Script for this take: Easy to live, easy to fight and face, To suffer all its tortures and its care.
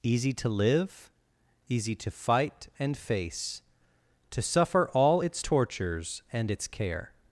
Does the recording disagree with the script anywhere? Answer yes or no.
no